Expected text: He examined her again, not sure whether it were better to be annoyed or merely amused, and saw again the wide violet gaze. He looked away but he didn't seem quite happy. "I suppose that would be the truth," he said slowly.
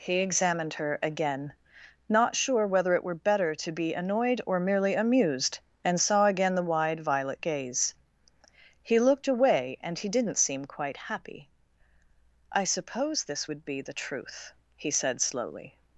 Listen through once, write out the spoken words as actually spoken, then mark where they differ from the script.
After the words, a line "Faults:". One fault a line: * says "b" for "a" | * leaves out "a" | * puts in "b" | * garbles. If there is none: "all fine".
He examined her again, not sure whether it were better to be annoyed or merely amused, and saw again the wide violet gaze. He looked away and he didn't seem quite happy. "I suppose this would be the truth," he said slowly.
Faults:
* says "and" for "but"
* says "this" for "that"